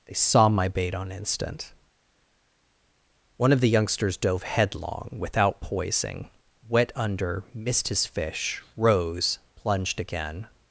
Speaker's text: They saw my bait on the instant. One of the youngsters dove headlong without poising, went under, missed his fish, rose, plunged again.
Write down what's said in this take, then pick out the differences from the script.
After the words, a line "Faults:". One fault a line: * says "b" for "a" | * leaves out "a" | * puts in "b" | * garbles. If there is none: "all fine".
They saw my bait on instant. One of the youngsters dove headlong without poising, wet under, missed his fish, rose, plunged again.
Faults:
* leaves out "the"
* says "wet" for "went"